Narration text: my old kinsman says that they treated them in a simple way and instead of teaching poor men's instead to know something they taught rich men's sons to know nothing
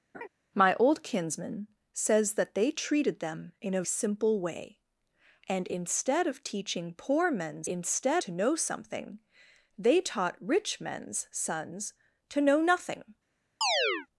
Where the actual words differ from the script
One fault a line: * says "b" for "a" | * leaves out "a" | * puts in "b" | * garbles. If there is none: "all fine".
all fine